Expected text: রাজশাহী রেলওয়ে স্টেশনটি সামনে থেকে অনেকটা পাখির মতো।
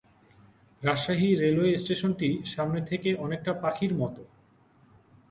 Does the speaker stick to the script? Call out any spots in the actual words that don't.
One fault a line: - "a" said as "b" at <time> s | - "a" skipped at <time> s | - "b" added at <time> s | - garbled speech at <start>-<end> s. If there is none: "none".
none